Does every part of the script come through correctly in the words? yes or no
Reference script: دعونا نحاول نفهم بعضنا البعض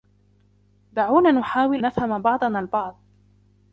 yes